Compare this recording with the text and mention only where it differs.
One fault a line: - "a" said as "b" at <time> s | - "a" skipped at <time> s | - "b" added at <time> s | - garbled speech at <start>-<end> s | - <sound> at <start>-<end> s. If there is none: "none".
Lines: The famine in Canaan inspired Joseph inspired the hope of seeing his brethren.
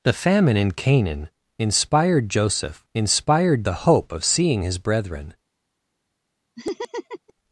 - laugh at 6.6-7.3 s